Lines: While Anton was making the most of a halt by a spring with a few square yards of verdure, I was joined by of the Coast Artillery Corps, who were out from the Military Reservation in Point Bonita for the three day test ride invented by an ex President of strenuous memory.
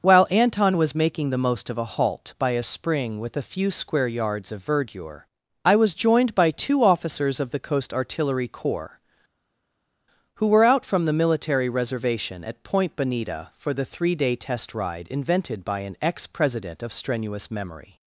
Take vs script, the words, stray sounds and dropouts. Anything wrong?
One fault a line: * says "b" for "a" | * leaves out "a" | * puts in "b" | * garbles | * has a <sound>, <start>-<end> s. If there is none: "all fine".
* puts in "two officers"
* says "at" for "in"